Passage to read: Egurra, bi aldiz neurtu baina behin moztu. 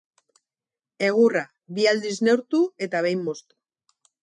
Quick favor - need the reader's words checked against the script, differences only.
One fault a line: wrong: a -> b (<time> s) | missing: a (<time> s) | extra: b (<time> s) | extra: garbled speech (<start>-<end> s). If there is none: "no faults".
wrong: baina -> eta (2.9 s)